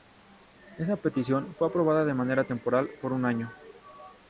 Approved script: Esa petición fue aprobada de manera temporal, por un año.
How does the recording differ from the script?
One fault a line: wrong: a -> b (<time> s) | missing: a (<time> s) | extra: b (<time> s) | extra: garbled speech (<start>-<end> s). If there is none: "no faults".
no faults